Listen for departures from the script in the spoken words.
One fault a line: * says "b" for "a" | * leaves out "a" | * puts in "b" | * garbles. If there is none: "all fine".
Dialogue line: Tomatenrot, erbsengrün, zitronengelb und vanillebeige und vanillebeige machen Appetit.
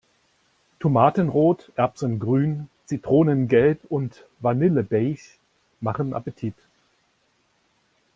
* leaves out "und vanillebeige"